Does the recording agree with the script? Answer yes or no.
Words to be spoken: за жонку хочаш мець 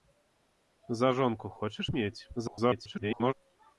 no